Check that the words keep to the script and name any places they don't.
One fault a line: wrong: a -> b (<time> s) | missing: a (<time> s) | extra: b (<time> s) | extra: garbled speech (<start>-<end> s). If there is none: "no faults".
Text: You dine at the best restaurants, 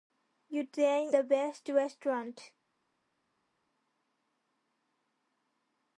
missing: at (1.1 s)